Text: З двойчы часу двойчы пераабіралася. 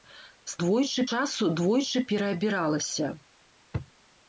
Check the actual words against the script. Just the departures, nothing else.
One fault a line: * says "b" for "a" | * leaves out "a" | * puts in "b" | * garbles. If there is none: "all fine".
all fine